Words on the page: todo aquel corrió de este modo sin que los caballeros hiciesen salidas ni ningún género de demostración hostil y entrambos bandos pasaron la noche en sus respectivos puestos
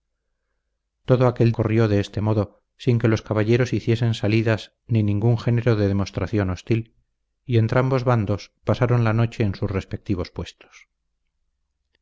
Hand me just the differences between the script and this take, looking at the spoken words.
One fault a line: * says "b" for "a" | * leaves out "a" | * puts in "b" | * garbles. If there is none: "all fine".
all fine